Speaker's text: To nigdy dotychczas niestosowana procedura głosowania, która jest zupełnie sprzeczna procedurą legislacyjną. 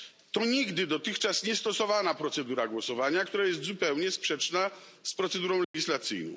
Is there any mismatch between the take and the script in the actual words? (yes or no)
yes